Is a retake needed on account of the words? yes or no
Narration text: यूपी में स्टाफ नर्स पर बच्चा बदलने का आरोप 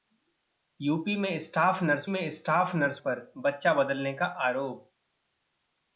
yes